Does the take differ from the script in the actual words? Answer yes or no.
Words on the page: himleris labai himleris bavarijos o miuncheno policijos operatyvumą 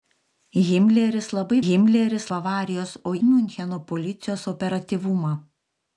no